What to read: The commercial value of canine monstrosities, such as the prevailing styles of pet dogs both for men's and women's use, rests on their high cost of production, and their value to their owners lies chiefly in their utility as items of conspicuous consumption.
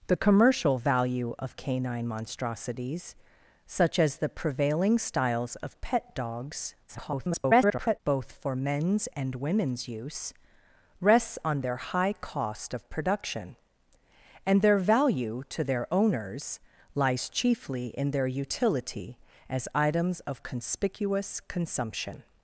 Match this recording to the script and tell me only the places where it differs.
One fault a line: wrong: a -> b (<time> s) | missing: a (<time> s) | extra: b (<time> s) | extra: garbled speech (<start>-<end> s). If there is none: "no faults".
extra: garbled speech (6.9-8.0 s)